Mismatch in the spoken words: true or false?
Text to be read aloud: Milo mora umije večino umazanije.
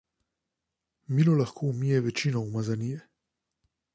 true